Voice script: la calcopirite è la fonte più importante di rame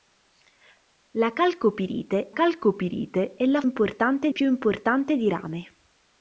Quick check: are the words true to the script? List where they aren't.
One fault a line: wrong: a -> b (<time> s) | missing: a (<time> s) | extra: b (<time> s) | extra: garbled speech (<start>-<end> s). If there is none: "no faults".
extra: calcopirite (2.3 s)
wrong: fonte -> importante (3.6 s)